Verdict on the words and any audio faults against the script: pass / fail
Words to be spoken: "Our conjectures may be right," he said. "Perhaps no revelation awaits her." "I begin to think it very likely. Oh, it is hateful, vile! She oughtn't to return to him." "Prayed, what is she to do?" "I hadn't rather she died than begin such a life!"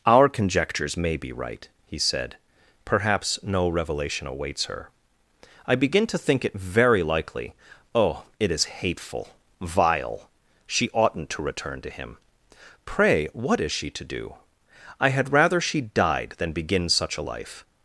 fail